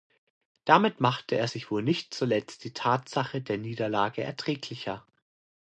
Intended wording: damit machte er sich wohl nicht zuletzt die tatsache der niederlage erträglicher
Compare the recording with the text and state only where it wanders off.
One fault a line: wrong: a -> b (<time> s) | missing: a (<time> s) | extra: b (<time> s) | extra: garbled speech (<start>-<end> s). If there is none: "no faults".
no faults